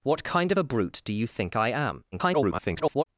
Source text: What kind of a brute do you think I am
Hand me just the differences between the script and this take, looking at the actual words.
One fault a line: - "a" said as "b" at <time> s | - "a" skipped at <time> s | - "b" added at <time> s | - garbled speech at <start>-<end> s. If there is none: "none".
- garbled speech at 2.1-3.0 s